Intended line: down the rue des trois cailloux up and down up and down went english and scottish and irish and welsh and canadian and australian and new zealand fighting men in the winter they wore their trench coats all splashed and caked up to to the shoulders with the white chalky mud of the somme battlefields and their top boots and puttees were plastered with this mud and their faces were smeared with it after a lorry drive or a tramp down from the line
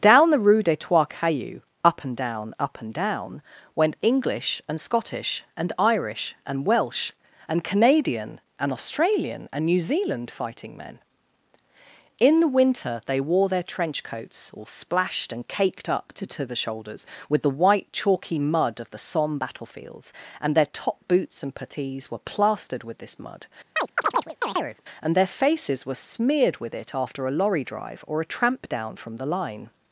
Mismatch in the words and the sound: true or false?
true